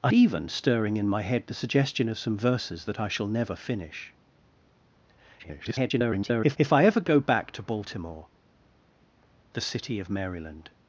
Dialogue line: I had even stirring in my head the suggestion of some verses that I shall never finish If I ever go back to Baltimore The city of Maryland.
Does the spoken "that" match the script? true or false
true